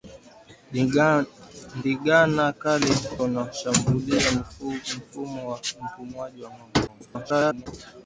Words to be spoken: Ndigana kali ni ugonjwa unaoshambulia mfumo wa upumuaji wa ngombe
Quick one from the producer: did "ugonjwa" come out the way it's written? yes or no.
no